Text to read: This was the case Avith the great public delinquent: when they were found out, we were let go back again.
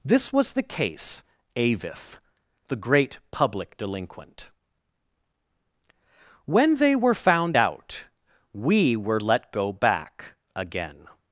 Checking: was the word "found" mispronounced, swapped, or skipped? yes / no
no